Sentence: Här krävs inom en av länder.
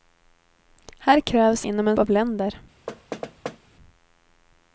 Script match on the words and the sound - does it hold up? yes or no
no